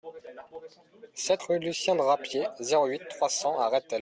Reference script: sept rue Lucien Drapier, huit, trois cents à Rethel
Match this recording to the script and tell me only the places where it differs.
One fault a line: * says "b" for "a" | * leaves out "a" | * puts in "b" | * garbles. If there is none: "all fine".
* puts in "zéro"